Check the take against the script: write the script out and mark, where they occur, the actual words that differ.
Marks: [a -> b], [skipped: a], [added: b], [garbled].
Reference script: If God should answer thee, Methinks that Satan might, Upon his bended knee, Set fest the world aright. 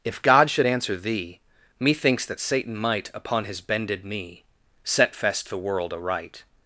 If God should answer thee, Methinks that Satan might, Upon his bended knee, Set fest the world aright.